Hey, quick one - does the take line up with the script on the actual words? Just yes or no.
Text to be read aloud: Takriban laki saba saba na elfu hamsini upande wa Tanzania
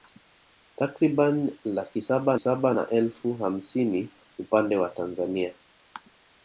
yes